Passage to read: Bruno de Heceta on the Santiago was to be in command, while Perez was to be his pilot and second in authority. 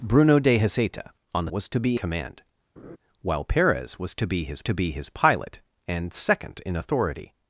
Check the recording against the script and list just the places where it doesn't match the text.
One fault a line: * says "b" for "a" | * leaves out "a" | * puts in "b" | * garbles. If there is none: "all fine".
* leaves out "Santiago"
* leaves out "in"
* puts in "to be his"